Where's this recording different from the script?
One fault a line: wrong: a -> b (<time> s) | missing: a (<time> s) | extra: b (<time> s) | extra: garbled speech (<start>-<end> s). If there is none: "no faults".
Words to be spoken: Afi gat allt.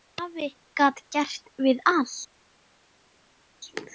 extra: gert við (1.2 s)